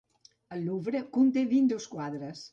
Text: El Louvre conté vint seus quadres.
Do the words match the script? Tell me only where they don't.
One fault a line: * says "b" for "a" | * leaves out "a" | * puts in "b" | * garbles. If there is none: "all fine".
all fine